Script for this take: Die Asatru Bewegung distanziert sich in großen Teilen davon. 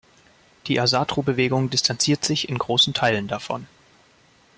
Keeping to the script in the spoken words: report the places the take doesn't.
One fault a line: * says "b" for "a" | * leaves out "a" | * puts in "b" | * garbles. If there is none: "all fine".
all fine